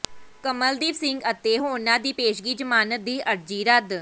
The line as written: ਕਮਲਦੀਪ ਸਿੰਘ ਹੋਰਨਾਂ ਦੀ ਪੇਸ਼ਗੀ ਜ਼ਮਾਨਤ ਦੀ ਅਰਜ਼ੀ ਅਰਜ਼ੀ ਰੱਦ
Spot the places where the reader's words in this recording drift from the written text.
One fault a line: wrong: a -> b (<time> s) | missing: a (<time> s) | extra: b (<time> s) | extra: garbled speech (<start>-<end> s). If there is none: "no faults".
extra: ਅਤੇ (1.3 s)
missing: ਅਰਜ਼ੀ (3.6 s)